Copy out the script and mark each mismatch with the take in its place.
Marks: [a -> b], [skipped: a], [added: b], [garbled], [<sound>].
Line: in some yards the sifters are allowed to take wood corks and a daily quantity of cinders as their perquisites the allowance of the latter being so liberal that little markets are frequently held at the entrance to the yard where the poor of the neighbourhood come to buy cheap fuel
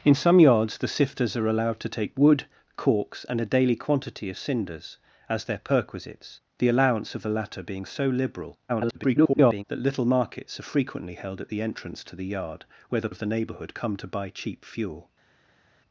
in some yards the sifters are allowed to take wood corks and a daily quantity of cinders as their perquisites the allowance of the latter being so liberal [garbled] that little markets are frequently held at the entrance to the yard where the [skipped: poor] of the neighbourhood come to buy cheap fuel